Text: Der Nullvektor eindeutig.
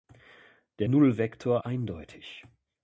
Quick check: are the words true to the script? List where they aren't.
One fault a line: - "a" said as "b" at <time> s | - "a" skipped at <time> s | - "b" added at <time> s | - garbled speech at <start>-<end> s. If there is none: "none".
none